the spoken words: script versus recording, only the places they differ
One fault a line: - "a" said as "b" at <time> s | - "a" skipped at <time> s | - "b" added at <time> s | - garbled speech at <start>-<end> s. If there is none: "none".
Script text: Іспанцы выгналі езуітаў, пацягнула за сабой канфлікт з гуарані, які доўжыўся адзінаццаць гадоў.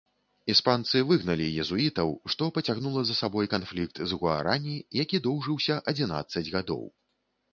- "што" added at 2.4 s